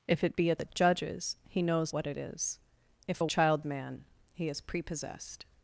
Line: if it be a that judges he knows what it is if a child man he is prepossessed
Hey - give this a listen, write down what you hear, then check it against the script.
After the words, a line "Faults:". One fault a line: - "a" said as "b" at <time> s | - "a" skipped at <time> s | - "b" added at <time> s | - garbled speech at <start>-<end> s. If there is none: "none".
if it be a that judges he knows what it is if a child man he is prepossessed
Faults:
none